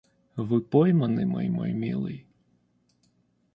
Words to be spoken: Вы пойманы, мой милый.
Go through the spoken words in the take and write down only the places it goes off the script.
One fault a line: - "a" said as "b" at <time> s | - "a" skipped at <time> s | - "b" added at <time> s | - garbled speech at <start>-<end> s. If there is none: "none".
- "мой" added at 1.5 s